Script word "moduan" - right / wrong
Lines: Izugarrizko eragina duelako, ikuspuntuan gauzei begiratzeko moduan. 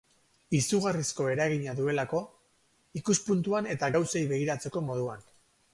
right